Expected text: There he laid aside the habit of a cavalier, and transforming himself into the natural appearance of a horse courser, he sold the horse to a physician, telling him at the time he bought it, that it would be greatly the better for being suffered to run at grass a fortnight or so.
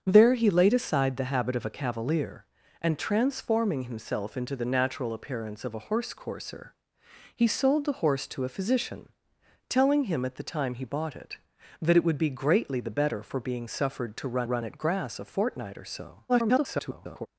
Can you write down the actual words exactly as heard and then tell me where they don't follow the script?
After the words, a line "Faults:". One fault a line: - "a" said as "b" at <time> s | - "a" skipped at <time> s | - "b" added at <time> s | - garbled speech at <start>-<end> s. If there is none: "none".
There he laid aside the habit of a cavalier, and transforming himself into the natural appearance of a horse courser, he sold the horse to a physician, telling him at the time he bought it, that it would be greatly the better for being suffered to run run at grass a fortnight or so. [garbled]
Faults:
- "run" added at 14.4 s
- garbled speech at 16.3-17.3 s